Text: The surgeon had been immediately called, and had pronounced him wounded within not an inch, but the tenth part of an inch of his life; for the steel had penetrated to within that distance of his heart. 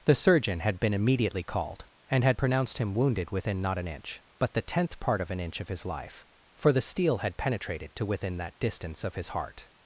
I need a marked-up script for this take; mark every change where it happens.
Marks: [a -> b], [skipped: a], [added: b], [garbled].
The surgeon had been immediately called, and had pronounced him wounded within not an inch, but the tenth part of an inch of his life; for the steel had penetrated to within that distance of his heart.